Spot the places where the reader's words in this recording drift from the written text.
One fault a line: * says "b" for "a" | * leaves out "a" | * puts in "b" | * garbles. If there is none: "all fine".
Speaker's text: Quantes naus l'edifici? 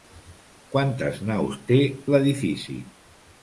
* puts in "té"